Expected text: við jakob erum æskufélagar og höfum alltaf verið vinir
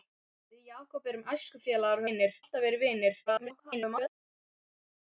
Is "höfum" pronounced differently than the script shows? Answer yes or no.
yes